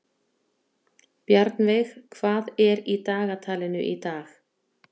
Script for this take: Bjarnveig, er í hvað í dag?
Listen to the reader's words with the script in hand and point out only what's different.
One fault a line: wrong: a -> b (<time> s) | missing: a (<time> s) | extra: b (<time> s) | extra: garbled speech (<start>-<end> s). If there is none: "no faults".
extra: hvað (2.2 s)
wrong: hvað -> dagatalinu (3.1 s)